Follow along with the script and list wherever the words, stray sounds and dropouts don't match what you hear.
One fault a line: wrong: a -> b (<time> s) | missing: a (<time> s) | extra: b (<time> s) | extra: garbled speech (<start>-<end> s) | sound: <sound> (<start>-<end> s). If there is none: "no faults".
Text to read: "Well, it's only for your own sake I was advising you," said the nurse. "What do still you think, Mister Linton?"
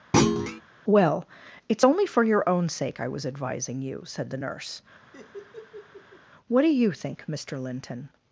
sound: thud (0.1-0.6 s)
sound: laugh (5.1-6.2 s)
missing: still (6.7 s)